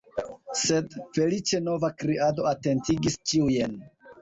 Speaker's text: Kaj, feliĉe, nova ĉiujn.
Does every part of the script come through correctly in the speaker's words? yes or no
no